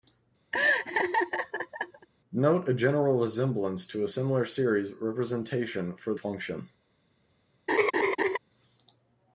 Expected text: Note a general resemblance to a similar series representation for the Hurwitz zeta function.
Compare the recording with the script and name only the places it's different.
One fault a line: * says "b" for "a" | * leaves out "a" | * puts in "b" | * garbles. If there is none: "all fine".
* leaves out "the Hurwitz zeta"